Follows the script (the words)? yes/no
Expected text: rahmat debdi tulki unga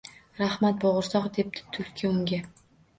no